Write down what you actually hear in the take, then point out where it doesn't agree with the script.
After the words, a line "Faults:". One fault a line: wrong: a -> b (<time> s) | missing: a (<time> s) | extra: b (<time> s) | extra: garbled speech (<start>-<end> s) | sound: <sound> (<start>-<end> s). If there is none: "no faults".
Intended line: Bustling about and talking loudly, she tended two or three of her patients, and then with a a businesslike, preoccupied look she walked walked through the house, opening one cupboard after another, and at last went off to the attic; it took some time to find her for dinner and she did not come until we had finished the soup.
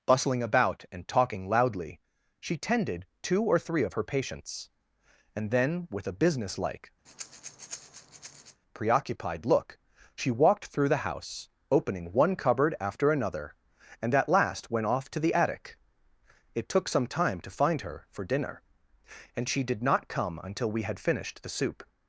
Bustling about and talking loudly, she tended two or three of her patients, and then with a businesslike, preoccupied look she walked through the house, opening one cupboard after another, and at last went off to the attic; it took some time to find her for dinner and she did not come until we had finished the soup.
Faults:
missing: a (6.2 s)
sound: breath (7.1-8.6 s)
missing: walked (10.7 s)